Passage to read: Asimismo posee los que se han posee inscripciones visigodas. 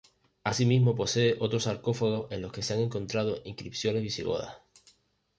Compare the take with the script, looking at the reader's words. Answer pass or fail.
fail